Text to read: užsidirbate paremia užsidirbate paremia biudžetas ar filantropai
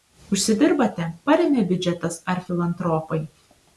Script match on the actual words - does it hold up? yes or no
no